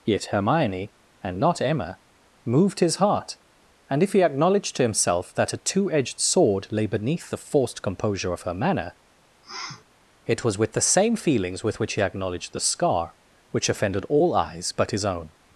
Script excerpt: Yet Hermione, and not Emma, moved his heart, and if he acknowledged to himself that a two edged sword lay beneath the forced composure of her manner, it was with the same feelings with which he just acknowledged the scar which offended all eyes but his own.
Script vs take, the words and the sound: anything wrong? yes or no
yes